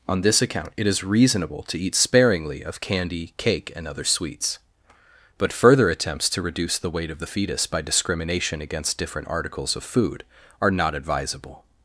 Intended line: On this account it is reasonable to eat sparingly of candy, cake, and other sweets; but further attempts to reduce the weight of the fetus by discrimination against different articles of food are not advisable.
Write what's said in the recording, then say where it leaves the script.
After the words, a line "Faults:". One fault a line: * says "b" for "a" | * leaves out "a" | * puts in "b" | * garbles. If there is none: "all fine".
On this account it is reasonable to eat sparingly of candy, cake, and other sweets; but further attempts to reduce the weight of the fetus by discrimination against different articles of food are not advisable.
Faults:
all fine